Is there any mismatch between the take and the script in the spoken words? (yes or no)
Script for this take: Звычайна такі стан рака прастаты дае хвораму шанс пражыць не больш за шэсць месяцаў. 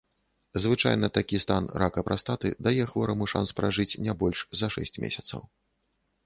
no